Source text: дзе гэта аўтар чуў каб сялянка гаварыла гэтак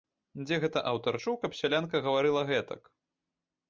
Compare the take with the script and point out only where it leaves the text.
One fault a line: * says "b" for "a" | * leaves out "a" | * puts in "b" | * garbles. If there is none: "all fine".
all fine